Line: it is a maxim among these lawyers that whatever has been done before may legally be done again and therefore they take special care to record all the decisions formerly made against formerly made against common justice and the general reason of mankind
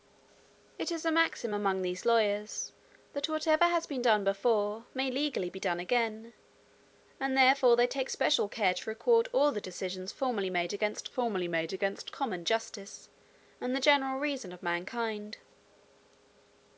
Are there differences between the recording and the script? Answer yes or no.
no